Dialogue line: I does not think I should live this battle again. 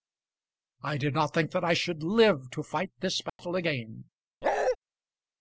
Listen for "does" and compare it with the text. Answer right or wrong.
wrong